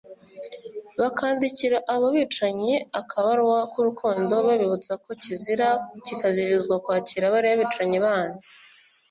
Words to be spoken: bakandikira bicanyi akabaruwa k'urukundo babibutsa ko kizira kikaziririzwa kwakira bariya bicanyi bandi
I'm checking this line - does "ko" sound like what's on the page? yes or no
yes